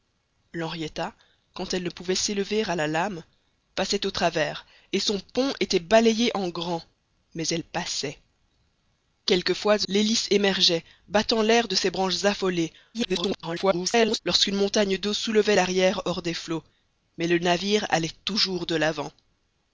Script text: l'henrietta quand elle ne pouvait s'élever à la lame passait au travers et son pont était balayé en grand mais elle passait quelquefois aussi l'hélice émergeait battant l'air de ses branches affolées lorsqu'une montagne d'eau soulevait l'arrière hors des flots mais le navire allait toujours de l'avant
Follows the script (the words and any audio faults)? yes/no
no